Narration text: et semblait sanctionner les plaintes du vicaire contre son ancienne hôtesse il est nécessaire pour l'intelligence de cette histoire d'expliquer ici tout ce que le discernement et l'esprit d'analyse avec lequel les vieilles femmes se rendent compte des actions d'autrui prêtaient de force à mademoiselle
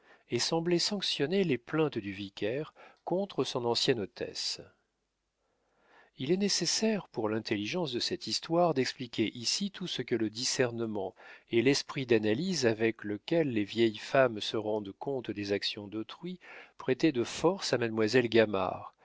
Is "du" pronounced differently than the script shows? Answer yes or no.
no